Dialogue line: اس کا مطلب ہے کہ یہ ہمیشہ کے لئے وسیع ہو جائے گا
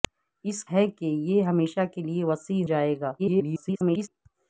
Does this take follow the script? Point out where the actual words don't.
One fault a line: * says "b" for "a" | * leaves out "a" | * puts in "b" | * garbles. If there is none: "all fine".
* leaves out "کا مطلب"
* leaves out "ہو"
* garbles